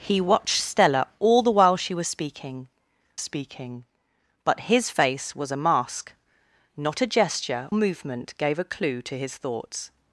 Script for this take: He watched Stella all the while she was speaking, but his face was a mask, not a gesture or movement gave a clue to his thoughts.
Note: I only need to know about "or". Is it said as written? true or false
false